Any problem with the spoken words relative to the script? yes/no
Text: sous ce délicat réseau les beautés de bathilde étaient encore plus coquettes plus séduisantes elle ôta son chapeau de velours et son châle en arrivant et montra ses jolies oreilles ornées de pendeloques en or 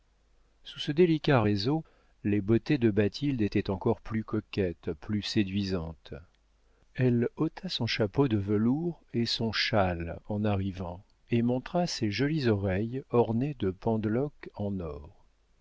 no